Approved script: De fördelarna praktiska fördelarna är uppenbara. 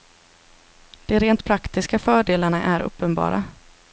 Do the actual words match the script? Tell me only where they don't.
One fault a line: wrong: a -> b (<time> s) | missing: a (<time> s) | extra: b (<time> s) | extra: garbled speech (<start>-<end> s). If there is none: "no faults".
wrong: fördelarna -> rent (1.2 s)